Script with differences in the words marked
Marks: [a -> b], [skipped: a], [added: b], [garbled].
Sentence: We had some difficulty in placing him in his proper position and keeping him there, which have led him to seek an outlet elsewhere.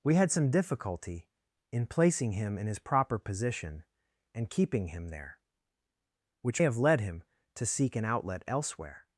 We had some difficulty in placing him in his proper position and keeping him there, which have led him to seek an outlet elsewhere.